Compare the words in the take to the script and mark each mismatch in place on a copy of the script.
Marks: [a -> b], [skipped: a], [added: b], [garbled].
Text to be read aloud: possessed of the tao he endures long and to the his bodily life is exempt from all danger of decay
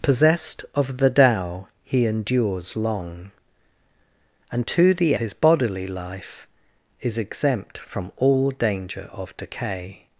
possessed of the tao he endures long and to the his bodily life is exempt from all danger of decay